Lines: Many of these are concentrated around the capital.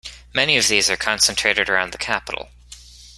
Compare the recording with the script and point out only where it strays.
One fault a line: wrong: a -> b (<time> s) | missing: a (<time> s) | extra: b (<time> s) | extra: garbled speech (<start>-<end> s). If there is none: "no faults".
no faults